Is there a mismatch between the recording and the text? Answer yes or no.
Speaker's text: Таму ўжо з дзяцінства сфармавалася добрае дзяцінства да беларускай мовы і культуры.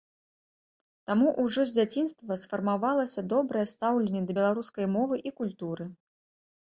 yes